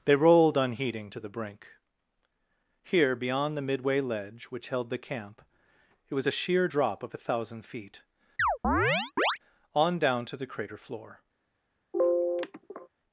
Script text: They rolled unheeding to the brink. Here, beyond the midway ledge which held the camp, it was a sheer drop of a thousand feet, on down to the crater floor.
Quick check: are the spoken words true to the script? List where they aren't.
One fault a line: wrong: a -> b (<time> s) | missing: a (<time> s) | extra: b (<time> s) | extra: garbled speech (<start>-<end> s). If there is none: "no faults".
no faults